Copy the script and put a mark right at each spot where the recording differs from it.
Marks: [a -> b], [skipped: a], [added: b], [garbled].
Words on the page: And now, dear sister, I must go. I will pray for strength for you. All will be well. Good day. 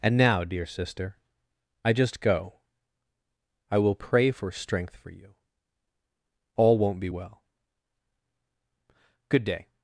And now, dear sister, I [must -> just] go. I will pray for strength for you. All [will -> won't] be well. Good day.